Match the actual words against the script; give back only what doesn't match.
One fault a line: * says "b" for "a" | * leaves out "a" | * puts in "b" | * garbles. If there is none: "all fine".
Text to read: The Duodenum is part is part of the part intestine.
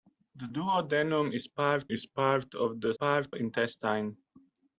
all fine